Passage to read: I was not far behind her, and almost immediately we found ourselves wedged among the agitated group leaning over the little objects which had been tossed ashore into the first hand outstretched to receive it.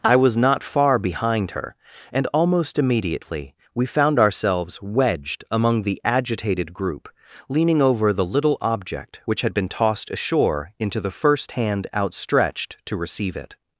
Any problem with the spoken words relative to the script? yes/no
yes